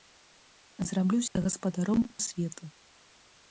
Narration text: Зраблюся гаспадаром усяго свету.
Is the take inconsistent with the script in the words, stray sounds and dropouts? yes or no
yes